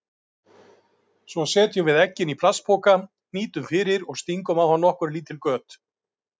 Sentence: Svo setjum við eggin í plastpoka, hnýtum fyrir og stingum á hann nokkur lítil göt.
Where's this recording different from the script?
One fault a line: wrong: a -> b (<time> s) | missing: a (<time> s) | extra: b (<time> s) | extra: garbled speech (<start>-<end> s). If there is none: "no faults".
no faults